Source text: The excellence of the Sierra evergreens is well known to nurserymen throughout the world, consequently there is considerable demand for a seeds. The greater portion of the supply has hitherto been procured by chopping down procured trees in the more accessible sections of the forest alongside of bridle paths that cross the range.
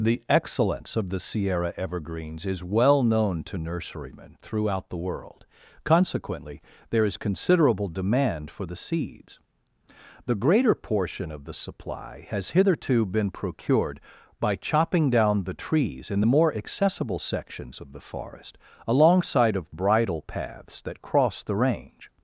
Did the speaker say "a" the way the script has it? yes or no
no